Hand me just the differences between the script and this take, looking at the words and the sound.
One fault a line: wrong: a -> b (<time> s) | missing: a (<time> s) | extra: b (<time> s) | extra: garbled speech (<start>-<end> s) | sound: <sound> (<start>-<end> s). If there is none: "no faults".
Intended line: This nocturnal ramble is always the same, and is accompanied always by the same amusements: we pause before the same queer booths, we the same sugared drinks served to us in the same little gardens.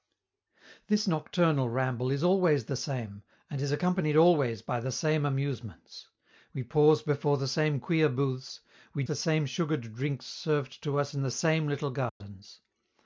sound: dropout (12.1-12.2 s)